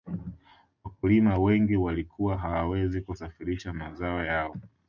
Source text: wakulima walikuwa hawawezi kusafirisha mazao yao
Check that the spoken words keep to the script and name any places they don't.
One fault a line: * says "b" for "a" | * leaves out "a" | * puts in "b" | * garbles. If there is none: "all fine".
* puts in "wengi"